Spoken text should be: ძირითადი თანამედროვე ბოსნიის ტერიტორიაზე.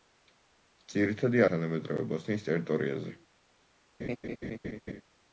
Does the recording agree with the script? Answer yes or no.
yes